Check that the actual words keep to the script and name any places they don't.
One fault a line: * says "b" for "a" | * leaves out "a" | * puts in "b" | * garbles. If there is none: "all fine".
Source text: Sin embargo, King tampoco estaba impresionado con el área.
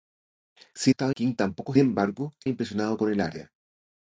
* says "estaba" for "embargo"
* says "embargo" for "estaba"